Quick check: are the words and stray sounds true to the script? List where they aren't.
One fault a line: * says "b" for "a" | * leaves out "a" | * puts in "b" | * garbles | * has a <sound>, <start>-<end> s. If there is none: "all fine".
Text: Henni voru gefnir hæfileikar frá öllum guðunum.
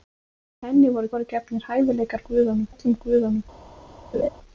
* puts in "voru"
* says "guðunum" for "frá"
* has a laugh, 4.1-4.3 s